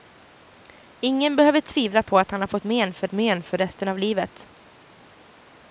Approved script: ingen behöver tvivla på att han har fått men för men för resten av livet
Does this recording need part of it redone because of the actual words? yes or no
no